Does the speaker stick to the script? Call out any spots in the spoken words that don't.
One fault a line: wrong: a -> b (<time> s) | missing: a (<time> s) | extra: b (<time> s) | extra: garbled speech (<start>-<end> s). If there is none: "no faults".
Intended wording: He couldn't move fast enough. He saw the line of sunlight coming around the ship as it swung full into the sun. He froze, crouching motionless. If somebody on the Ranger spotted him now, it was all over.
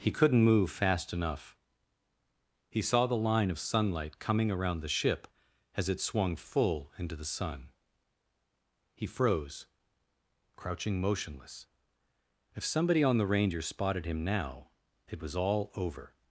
no faults